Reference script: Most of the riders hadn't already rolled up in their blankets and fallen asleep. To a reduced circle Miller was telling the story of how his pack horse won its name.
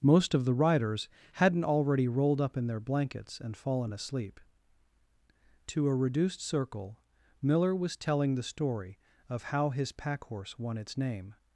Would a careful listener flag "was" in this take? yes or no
no